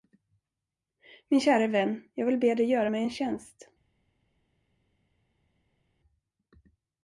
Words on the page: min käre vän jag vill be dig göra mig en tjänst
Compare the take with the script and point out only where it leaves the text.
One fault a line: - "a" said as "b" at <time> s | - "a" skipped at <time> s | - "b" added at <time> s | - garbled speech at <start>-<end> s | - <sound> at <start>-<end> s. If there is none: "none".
none